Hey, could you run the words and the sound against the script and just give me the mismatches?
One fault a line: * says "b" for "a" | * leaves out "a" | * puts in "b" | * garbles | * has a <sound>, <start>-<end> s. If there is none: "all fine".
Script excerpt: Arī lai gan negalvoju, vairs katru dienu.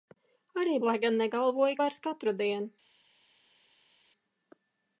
all fine